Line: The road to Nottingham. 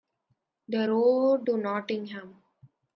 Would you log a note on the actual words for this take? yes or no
no